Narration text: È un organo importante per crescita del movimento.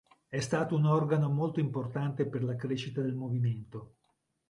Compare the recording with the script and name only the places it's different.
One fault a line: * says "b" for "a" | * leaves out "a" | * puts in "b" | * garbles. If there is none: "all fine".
* puts in "stato"
* puts in "molto"
* puts in "la"